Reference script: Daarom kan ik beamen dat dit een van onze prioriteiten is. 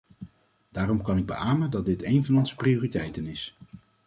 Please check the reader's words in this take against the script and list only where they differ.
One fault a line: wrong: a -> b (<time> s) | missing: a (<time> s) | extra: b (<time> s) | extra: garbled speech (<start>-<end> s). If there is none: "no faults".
no faults